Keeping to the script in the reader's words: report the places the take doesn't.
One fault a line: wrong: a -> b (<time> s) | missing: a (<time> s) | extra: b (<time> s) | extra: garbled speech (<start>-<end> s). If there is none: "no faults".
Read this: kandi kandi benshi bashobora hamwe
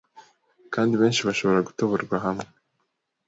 missing: kandi (0.9 s)
extra: gutoborwa (1.7 s)